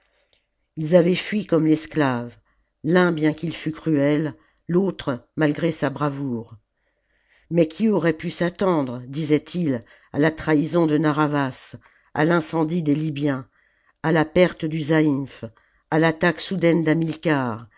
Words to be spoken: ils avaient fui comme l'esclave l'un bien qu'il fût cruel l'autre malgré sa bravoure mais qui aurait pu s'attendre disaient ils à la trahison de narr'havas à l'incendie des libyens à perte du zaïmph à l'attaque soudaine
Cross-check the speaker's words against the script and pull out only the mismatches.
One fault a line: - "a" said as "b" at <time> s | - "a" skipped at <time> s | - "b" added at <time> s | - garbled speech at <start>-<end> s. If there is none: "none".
- "la" added at 14.1 s